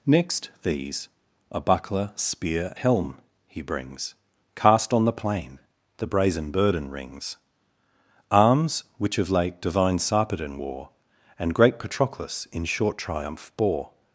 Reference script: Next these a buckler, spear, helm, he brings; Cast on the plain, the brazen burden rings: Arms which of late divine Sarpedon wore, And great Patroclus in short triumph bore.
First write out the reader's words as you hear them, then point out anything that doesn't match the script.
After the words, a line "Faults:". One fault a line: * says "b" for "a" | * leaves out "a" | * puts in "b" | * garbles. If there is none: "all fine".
Next these a buckler, spear, helm, he brings; Cast on the plain, the brazen burden rings: Arms which of late divine Sarpedon wore, And great Patroclus in short triumph bore.
Faults:
all fine